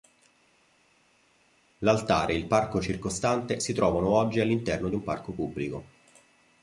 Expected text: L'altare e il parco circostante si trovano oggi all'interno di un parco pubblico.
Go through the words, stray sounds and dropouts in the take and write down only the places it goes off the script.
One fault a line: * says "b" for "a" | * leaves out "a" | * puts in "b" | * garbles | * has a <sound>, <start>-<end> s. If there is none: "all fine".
all fine